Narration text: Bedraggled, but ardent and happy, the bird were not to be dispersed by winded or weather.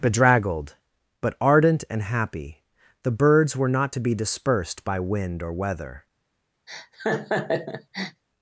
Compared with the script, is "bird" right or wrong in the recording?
wrong